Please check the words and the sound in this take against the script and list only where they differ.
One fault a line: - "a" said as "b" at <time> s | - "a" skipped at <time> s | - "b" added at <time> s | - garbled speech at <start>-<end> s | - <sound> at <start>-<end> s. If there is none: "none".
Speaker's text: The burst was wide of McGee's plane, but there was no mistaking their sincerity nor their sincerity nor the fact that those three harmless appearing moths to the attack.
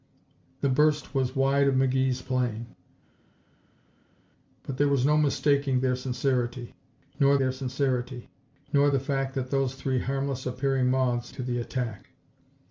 none